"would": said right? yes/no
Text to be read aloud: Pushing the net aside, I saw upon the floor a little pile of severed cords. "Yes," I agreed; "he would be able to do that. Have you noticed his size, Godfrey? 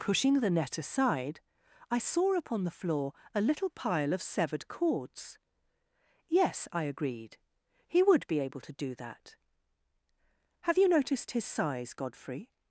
yes